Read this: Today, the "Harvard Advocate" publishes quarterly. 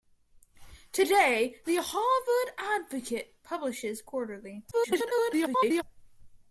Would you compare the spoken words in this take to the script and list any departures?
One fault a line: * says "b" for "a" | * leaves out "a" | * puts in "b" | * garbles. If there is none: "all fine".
* garbles